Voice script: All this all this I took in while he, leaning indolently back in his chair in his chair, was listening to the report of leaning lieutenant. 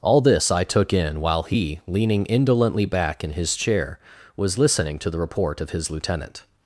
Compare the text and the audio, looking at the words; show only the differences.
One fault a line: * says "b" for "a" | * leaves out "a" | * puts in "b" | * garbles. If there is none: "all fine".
* leaves out "all this"
* leaves out "in his chair"
* says "his" for "leaning"